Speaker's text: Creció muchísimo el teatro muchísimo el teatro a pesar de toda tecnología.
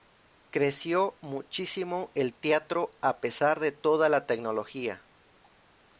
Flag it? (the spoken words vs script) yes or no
yes